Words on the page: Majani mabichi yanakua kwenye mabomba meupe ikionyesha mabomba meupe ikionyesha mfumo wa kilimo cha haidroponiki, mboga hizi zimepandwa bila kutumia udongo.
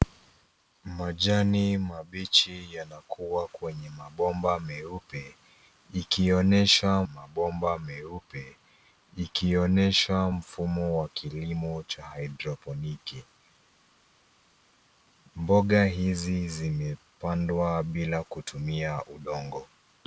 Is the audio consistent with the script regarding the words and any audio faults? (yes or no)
yes